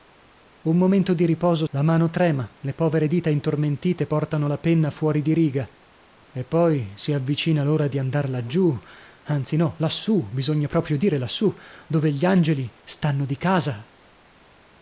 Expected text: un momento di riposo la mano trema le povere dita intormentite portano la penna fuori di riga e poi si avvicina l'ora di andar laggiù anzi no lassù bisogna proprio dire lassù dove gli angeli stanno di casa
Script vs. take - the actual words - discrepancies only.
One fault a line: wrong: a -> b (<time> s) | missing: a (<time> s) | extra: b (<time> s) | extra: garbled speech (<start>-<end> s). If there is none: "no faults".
no faults